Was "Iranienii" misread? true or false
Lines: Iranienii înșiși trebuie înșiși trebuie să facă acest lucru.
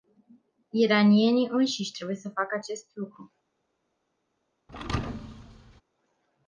false